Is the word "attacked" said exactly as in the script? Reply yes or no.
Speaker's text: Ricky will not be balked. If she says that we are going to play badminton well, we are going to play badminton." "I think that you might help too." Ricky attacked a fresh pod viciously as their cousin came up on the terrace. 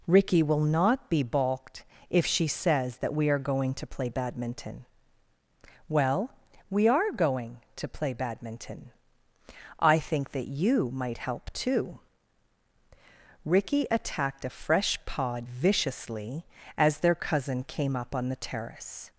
yes